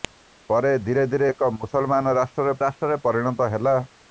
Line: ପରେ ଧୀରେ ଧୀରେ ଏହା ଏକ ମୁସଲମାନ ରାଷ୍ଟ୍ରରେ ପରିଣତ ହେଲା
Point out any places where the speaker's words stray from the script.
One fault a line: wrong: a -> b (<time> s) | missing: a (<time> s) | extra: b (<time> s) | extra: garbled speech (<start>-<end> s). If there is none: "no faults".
missing: ଏହା (1.3 s)
extra: ରାଷ୍ଟ୍ରରେ (2.7 s)